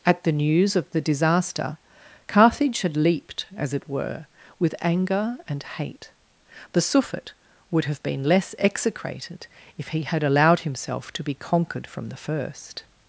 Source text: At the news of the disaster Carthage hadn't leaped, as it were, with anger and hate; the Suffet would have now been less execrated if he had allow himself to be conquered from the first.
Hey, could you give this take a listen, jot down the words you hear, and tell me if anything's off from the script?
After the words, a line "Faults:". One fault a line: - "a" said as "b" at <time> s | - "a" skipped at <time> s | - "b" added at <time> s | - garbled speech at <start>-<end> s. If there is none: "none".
At the news of the disaster Carthage had leaped, as it were, with anger and hate; the Suffet would have been less execrated if he had allowed himself to be conquered from the first.
Faults:
- "hadn't" said as "had" at 2.8 s
- "now" skipped at 8.0 s
- "allow" said as "allowed" at 10.2 s